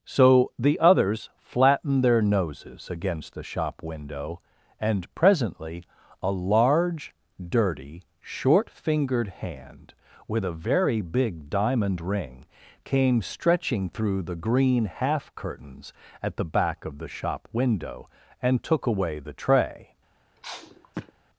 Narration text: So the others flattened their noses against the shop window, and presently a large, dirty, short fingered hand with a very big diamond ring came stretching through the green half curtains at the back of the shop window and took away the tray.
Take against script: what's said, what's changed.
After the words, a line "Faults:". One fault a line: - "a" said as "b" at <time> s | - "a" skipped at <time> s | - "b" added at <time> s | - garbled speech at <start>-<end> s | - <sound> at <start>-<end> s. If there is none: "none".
So the others flattened their noses against the shop window, and presently a large, dirty, short fingered hand with a very big diamond ring came stretching through the green half curtains at the back of the shop window and took away the tray.
Faults:
- sniff at 20.4-21.1 s